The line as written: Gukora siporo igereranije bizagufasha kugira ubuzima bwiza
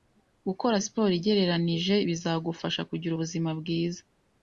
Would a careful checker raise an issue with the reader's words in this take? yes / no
no